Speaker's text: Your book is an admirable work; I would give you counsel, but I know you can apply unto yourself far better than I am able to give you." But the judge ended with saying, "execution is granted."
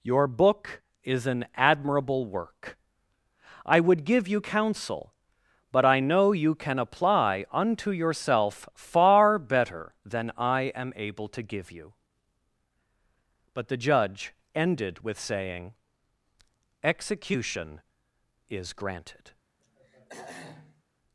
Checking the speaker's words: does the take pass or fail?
pass